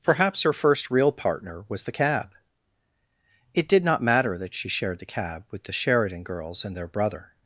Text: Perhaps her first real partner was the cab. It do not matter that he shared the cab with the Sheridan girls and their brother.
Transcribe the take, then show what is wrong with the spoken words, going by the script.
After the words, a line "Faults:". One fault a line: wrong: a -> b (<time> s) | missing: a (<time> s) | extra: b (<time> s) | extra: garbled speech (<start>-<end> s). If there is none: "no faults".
Perhaps her first real partner was the cab. It did not matter that she shared the cab with the Sheridan girls and their brother.
Faults:
wrong: do -> did (3.7 s)
wrong: he -> she (4.5 s)